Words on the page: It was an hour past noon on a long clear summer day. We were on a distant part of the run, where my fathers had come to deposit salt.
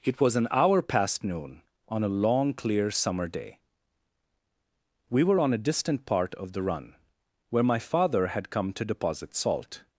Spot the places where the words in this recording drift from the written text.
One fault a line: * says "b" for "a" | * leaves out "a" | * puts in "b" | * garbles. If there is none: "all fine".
* says "father" for "fathers"